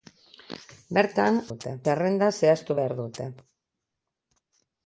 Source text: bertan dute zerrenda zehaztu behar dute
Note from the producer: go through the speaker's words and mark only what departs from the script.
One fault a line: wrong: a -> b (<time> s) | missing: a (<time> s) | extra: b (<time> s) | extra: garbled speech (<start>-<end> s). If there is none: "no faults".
no faults